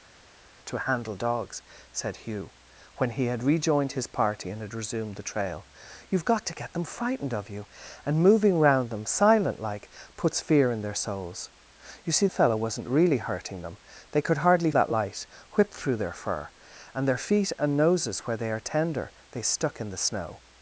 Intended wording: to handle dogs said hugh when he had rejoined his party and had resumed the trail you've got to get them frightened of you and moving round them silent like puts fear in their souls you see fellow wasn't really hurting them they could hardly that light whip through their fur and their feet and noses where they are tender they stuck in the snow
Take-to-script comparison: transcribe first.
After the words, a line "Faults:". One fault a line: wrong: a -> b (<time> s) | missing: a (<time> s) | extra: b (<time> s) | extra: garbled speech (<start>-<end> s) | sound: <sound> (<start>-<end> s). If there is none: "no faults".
to handle dogs said hugh when he had rejoined his party and had resumed the trail you've got to get them frightened of you and moving round them silent like puts fear in their souls you see fellow wasn't really hurting them they could hardly that light whip through their fur and their feet and noses where they are tender they stuck in the snow
Faults:
no faults